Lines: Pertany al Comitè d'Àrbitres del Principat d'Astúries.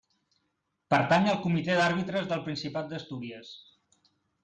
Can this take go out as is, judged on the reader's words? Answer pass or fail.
pass